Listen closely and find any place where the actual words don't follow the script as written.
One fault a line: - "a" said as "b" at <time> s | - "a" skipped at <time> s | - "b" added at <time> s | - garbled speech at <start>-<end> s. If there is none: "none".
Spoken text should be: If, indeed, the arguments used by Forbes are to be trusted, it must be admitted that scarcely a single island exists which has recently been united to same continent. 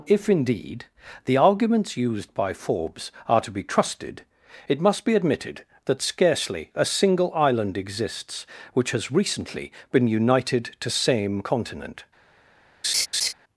none